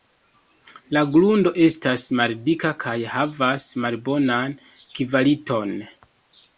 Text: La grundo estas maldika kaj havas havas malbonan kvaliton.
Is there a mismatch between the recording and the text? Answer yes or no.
yes